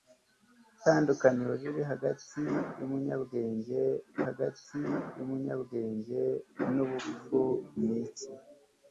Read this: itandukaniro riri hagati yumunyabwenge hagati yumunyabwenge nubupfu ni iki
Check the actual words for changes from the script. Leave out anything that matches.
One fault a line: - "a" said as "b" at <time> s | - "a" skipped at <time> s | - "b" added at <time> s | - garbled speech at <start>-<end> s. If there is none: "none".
none